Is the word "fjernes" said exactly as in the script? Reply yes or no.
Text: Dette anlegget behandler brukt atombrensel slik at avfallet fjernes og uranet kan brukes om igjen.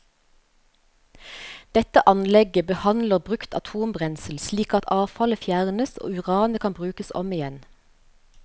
yes